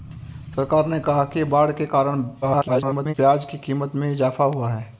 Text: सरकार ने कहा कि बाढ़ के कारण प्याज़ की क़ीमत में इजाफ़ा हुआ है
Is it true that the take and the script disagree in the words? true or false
true